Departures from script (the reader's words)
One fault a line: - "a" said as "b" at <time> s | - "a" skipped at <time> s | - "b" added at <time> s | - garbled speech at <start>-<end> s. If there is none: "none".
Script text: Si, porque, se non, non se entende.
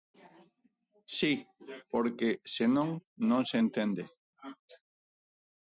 none